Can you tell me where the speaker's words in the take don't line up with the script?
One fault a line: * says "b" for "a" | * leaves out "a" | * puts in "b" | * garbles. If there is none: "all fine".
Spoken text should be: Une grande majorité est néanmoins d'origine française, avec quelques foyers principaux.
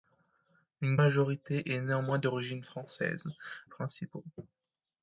* leaves out "grande"
* leaves out "avec quelques foyers"